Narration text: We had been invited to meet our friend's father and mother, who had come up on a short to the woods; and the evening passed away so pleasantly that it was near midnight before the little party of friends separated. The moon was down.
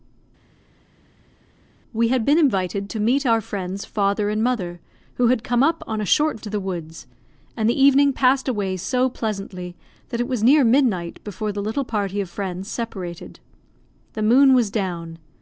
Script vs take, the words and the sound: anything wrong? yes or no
no